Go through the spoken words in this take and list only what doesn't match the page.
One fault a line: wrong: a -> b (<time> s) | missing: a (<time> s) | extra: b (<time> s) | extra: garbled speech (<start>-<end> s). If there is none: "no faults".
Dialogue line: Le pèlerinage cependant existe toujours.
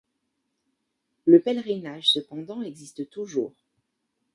no faults